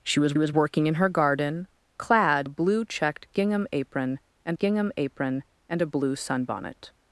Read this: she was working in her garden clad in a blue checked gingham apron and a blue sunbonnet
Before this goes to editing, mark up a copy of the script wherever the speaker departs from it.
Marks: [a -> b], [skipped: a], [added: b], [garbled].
she was [added: was] working in her garden clad [skipped: in] a blue checked gingham apron and [added: gingham apron and] a blue sunbonnet